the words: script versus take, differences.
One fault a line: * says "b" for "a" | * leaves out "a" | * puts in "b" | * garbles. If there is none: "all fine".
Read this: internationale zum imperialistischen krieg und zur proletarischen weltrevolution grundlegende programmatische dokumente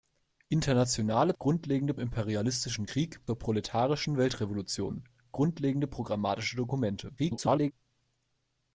* says "grundlegende" for "zum"
* leaves out "und"
* garbles